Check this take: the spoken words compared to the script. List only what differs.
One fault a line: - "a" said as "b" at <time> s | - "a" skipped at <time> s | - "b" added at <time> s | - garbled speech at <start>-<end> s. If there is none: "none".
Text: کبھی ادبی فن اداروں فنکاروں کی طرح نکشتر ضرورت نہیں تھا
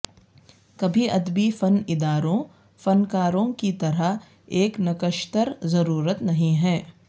- "ایک" added at 4.5 s
- "تھا" said as "ہے" at 6.6 s